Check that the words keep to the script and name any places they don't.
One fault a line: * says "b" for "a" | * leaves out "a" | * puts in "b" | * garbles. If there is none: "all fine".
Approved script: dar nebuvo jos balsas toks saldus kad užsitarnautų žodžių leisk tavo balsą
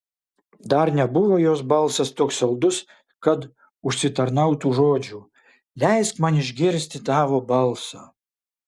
* puts in "man išgirsti"